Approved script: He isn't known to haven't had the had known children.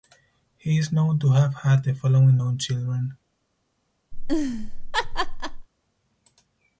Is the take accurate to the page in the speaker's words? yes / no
no